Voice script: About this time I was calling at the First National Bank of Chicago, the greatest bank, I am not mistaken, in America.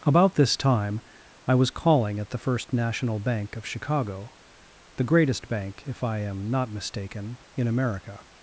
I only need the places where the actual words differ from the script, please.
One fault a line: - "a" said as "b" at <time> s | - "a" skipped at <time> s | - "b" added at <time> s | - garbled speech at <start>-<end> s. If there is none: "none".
- "if" added at 5.9 s